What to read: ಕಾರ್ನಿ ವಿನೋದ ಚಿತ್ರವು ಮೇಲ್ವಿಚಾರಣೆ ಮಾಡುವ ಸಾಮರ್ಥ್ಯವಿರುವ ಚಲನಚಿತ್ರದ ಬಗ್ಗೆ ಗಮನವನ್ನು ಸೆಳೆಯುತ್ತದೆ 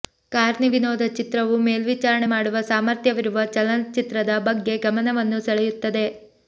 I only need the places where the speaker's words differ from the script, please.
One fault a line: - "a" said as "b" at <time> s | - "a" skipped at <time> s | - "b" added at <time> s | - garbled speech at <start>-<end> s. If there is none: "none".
none